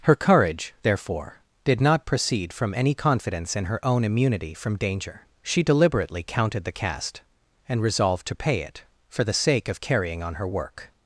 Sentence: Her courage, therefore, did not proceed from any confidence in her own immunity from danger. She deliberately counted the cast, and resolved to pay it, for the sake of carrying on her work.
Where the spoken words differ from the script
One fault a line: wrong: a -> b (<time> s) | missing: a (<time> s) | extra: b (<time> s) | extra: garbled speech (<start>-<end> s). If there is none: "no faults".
no faults